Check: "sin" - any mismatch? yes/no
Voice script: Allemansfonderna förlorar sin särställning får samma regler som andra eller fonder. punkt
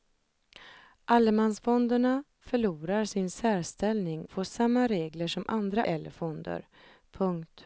no